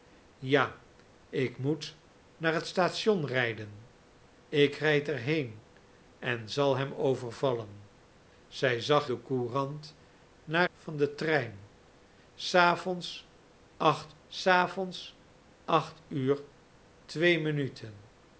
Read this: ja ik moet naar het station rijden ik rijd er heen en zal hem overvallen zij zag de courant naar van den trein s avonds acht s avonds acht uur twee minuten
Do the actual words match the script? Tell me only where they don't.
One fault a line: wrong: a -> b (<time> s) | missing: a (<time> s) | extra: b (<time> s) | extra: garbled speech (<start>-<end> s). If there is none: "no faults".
no faults